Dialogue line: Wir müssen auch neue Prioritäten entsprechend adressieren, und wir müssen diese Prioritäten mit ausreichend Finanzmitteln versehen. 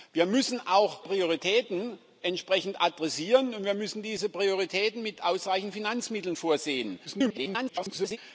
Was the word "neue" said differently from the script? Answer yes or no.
yes